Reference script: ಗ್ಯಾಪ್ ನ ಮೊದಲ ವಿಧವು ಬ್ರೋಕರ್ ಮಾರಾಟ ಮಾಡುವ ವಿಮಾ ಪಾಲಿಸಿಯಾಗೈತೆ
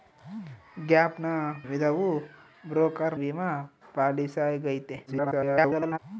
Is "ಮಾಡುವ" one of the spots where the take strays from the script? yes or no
yes